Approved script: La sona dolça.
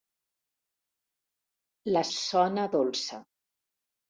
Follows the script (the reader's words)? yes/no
yes